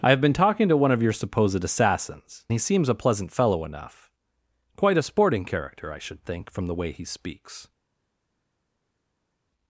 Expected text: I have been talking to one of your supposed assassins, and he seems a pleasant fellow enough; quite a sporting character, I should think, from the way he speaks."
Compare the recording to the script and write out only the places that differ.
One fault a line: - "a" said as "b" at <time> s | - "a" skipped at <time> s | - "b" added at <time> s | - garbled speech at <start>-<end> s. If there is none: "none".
- "and" skipped at 2.5 s